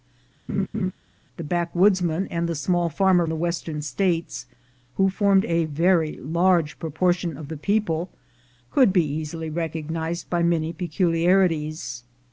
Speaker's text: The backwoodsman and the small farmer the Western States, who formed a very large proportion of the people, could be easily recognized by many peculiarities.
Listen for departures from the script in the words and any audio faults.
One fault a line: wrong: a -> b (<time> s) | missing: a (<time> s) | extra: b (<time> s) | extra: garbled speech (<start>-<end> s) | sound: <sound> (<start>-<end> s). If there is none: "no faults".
sound: laugh (0.5-0.9 s)